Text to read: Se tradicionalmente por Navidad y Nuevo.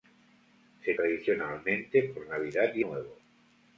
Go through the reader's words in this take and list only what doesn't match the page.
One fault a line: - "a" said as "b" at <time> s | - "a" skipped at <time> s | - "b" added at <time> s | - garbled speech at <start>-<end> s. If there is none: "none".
none